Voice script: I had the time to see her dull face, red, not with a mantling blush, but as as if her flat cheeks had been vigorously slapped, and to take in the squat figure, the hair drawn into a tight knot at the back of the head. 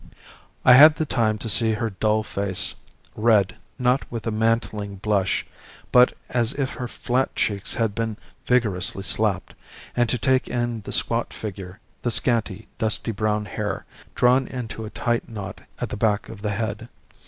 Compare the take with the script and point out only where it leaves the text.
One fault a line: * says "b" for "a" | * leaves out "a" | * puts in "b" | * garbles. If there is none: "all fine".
* leaves out "as"
* puts in "scanty dusty brown"